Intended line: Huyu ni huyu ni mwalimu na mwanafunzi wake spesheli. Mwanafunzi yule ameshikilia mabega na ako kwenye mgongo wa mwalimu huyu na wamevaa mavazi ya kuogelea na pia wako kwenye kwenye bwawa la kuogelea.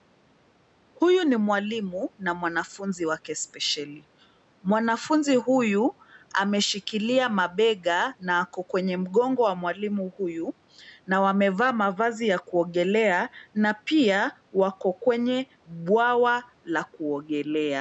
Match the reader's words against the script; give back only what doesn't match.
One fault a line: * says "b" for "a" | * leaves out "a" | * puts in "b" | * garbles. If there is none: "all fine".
* leaves out "huyu ni"
* says "huyu" for "yule"
* leaves out "kwenye"